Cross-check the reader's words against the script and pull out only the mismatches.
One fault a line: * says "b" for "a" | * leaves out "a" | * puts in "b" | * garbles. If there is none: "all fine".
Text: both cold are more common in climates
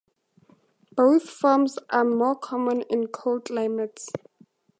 * says "forms" for "cold"
* puts in "cold"